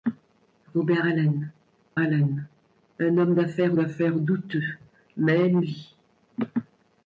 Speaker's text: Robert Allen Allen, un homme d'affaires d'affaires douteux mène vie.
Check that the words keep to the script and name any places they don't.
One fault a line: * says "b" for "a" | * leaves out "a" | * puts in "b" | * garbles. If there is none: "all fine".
all fine